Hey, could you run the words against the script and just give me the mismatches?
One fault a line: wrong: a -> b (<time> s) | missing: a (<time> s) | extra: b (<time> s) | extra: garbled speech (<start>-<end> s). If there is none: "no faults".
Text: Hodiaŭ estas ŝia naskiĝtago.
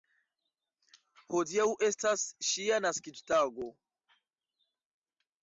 no faults